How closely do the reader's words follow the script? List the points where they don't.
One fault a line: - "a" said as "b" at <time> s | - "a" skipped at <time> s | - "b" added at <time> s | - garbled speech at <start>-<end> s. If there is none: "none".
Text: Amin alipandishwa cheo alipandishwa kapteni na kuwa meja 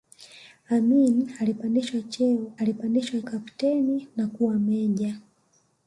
none